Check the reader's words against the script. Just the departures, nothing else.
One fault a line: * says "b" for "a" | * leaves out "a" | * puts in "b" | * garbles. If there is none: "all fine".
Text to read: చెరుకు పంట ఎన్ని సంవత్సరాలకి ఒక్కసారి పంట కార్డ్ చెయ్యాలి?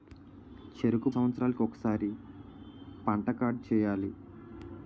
* leaves out "పంట ఎన్ని"